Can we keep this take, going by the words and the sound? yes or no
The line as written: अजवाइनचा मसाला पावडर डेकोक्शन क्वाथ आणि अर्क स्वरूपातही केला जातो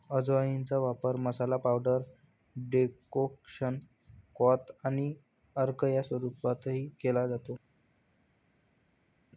no